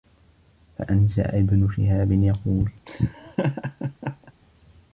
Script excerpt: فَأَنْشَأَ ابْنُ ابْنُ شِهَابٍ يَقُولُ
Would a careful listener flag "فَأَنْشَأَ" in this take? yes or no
no